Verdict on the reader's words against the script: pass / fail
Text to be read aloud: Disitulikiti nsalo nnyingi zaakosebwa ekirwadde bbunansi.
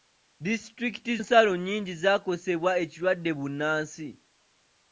pass